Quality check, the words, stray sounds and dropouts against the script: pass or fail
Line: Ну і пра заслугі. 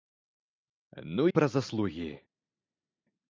fail